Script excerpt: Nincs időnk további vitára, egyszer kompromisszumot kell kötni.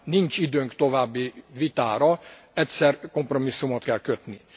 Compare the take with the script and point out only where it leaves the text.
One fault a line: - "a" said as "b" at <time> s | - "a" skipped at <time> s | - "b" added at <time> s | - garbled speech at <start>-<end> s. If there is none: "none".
none